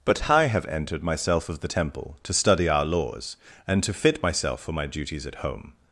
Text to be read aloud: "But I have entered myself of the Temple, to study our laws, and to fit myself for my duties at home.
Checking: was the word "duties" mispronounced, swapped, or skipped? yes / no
no